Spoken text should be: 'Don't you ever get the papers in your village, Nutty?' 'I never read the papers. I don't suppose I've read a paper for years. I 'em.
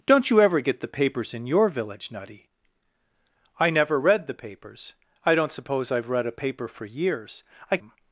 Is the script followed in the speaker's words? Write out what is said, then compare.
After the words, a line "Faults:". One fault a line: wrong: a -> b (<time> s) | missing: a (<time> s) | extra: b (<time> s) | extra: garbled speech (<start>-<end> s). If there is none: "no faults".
'Don't you ever get the papers in your village, Nutty?' 'I never read the papers. I don't suppose I've read a paper for years. I 'em.
Faults:
no faults